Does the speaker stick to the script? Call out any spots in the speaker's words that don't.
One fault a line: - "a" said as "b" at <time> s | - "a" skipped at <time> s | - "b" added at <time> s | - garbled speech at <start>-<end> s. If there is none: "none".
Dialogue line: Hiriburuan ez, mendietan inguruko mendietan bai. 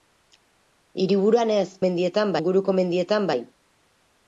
none